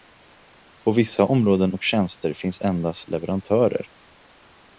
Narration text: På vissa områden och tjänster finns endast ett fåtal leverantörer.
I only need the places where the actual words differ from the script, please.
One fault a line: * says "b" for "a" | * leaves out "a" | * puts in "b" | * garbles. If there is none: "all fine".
* leaves out "ett fåtal"